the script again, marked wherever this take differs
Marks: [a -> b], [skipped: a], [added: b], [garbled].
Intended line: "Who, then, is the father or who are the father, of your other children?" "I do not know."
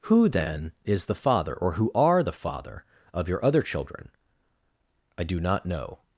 "Who, then, is the father or who are the father, of your other children?" "I do not know."